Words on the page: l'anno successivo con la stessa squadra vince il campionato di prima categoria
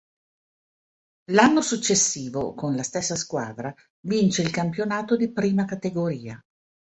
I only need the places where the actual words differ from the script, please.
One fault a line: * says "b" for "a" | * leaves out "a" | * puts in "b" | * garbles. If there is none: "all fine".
all fine